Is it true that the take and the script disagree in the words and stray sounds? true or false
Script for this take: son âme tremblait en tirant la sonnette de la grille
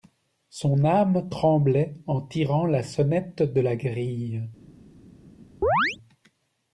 true